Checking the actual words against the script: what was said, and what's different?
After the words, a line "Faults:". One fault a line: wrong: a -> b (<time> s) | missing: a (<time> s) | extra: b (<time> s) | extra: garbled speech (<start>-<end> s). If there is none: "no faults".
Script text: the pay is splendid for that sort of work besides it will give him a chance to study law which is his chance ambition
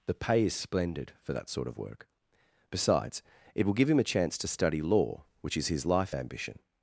the pay is splendid for that sort of work besides it will give him a chance to study law which is his life ambition
Faults:
wrong: chance -> life (5.8 s)